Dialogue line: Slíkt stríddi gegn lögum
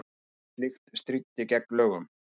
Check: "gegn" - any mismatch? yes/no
no